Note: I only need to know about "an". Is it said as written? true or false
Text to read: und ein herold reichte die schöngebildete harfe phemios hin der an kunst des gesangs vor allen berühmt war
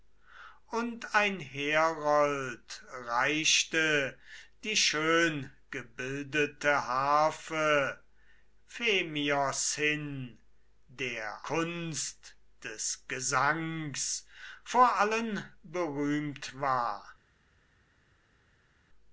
false